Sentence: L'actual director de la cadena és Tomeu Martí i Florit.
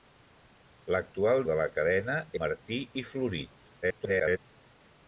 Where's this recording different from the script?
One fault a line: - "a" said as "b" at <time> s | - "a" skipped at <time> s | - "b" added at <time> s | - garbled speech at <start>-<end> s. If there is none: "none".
- "director" skipped at 1.4 s
- "és Tomeu" skipped at 2.2 s
- garbled speech at 3.8-4.4 s